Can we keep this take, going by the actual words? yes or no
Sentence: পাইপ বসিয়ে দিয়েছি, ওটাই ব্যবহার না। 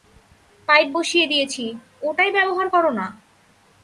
no